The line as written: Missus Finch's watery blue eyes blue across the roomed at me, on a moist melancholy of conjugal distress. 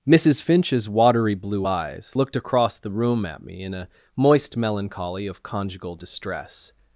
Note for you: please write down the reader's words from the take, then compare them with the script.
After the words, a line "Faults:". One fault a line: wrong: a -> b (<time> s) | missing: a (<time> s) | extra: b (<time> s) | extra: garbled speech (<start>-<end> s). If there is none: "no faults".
Missus Finch's watery blue eyes looked across the room at me, in a moist melancholy of conjugal distress.
Faults:
wrong: blue -> looked (2.1 s)
wrong: roomed -> room (2.9 s)
wrong: on -> in (3.6 s)